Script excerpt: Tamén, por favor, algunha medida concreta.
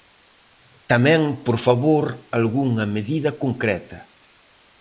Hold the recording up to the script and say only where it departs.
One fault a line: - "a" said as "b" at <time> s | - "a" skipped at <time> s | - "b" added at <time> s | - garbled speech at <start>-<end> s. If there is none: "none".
none